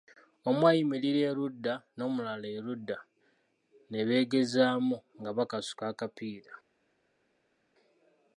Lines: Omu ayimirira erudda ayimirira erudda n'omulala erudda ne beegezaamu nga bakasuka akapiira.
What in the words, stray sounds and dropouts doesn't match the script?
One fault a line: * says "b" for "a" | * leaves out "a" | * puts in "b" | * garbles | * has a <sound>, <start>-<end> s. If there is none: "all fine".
* leaves out "ayimirira erudda"